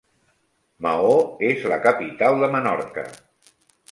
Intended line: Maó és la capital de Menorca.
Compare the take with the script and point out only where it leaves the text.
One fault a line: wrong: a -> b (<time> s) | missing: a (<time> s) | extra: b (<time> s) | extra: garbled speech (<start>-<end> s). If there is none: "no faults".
no faults